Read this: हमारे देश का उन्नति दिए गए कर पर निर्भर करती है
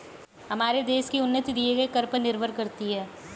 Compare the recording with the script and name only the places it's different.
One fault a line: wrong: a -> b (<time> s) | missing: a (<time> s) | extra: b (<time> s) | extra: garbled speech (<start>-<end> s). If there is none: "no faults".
wrong: का -> की (1.1 s)